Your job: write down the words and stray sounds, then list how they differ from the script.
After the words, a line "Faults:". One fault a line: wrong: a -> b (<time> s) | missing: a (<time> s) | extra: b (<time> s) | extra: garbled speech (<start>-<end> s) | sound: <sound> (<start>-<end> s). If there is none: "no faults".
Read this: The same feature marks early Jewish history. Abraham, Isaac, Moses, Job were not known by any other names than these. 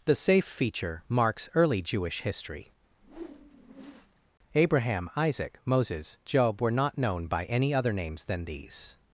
The safe feature marks early Jewish history. Abraham, Isaac, Moses, Job were not known by any other names than these.
Faults:
wrong: same -> safe (0.1 s)
sound: whoosh (2.9-4.3 s)